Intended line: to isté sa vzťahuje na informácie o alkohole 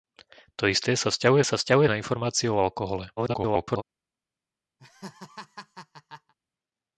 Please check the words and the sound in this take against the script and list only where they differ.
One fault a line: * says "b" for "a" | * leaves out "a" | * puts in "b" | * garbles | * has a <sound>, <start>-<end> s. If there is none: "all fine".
* puts in "sa vzťahuje"
* garbles
* has a laugh, 4.8-6.3 s